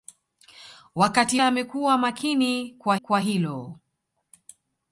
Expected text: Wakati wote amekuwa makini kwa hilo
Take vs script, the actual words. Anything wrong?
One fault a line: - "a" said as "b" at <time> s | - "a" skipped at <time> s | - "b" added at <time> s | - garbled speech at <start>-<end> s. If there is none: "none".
- "wote" skipped at 1.4 s
- "kwa" added at 3.0 s